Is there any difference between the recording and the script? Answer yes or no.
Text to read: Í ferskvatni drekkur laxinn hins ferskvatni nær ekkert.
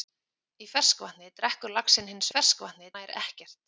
no